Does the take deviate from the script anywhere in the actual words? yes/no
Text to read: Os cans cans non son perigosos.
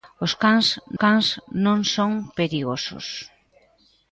no